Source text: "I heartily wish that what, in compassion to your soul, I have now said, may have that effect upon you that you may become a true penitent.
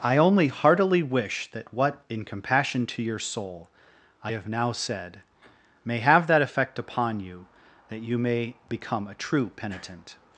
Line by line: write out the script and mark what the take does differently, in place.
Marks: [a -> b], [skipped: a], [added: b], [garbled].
"I [added: only] heartily wish that what, in compassion to your soul, I have now said, may have that effect upon you that you may become a true penitent.